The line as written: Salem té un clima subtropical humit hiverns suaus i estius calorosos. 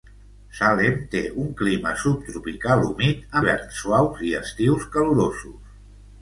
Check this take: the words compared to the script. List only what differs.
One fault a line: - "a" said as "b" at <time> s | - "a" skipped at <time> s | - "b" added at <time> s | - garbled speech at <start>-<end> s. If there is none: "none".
none